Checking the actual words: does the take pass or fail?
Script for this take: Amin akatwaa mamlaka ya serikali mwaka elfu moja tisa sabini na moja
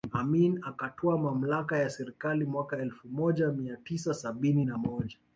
fail